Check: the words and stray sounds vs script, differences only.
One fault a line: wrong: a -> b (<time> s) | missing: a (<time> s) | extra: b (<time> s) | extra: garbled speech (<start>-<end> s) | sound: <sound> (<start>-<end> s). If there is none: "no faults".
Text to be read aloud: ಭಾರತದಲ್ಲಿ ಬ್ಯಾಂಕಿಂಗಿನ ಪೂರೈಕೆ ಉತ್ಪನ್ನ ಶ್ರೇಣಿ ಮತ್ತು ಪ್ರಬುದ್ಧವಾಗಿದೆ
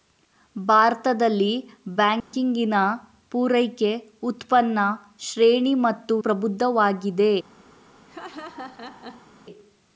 sound: dropout (2.2-2.3 s)
sound: laugh (8.1-9.3 s)